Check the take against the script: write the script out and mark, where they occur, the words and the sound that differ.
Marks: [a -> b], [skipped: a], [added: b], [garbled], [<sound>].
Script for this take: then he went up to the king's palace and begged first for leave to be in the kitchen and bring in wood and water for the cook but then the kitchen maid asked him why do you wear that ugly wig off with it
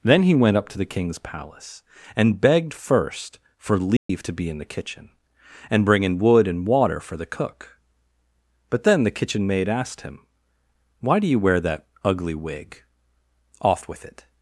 then he went up to the king's palace and begged first for leave [dropout] to be in the kitchen and bring in wood and water for the cook but then the kitchen maid asked him why do you wear that ugly wig off with it